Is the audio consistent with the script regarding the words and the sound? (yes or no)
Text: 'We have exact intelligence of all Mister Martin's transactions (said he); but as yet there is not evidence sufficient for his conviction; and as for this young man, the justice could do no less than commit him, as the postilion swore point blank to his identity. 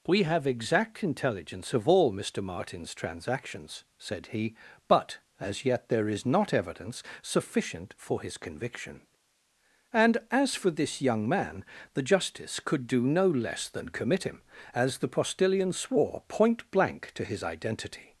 yes